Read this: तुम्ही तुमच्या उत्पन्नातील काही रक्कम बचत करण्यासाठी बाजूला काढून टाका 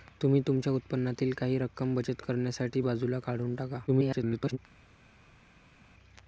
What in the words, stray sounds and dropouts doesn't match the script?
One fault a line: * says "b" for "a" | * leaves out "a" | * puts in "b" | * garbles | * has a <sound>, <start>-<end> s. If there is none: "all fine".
* garbles